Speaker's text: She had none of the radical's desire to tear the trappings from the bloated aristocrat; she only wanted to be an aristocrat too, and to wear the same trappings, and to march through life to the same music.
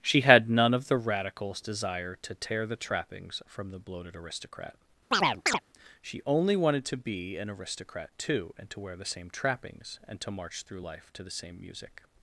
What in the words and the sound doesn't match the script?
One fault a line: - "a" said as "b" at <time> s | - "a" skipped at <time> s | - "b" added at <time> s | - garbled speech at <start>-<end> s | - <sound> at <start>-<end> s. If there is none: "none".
- chirp at 5.1-5.6 s